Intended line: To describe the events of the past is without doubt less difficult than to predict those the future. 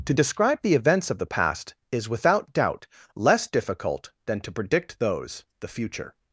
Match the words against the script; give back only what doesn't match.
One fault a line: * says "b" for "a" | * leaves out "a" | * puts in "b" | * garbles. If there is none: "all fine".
all fine